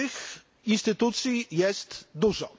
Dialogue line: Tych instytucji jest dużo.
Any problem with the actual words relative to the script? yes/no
no